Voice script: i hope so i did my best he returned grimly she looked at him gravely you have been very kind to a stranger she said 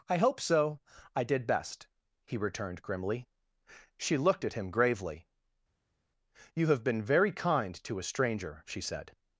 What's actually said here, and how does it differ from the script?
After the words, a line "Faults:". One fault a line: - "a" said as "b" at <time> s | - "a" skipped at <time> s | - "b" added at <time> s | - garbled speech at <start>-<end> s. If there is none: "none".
i hope so i did best he returned grimly she looked at him gravely you have been very kind to a stranger she said
Faults:
- "my" skipped at 1.4 s